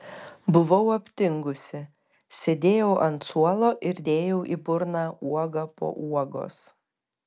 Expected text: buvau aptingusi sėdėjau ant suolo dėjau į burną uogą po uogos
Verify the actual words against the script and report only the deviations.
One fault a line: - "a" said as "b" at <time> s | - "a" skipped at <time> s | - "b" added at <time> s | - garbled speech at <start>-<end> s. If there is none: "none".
- "ir" added at 3.9 s